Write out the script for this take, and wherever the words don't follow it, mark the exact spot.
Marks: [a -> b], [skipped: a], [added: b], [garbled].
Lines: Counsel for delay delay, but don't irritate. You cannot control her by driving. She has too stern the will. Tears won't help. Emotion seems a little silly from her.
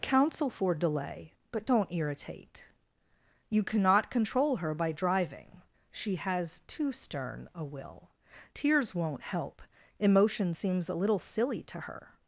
Counsel for delay [skipped: delay,] but don't irritate. You cannot control her by driving. She has too stern [the -> a] will. Tears won't help. Emotion seems a little silly [from -> to] her.